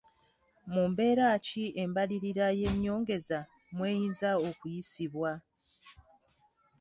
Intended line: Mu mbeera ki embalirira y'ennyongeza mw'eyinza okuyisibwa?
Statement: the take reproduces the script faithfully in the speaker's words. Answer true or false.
true